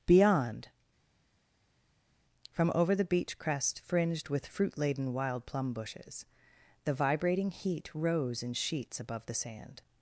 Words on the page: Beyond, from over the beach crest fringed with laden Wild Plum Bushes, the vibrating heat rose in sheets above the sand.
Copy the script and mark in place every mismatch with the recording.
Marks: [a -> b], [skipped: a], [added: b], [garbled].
Beyond, from over the beach crest fringed with [added: fruit] laden Wild Plum Bushes, the vibrating heat rose in sheets above the sand.